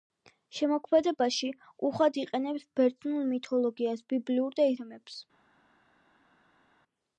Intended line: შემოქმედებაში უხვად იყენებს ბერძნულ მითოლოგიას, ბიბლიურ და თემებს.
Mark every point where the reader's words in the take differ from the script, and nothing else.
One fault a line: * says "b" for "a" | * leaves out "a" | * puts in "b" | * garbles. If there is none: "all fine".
all fine